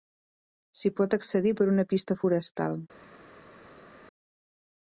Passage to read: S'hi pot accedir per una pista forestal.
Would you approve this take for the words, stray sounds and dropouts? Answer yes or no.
yes